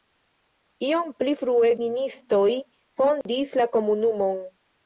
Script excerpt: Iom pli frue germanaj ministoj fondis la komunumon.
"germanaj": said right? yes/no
no